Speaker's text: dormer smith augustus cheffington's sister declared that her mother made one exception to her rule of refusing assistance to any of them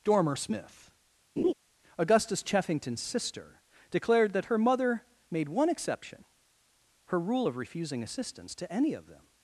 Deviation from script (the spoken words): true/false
true